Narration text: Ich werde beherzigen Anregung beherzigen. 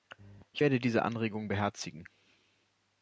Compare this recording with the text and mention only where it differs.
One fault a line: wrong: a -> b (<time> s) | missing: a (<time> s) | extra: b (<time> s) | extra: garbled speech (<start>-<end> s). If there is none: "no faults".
wrong: beherzigen -> diese (0.8 s)